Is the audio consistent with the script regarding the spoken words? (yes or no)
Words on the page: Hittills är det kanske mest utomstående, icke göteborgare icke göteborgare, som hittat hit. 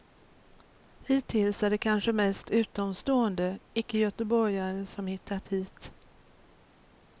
no